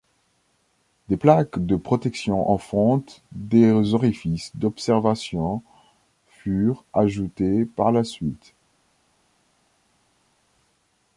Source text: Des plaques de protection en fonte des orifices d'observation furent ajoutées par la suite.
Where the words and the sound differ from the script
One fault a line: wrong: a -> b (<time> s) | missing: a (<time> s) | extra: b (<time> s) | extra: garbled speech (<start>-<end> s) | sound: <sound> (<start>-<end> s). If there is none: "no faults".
no faults